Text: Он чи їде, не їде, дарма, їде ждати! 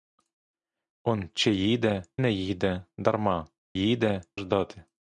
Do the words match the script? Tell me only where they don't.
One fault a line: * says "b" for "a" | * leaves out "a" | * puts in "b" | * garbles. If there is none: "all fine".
all fine